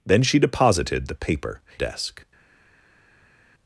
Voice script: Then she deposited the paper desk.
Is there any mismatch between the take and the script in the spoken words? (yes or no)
no